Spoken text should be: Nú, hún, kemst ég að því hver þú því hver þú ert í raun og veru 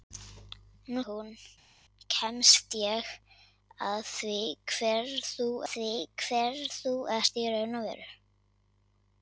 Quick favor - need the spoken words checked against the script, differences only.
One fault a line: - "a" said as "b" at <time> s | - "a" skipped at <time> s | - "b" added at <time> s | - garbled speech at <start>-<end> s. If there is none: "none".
none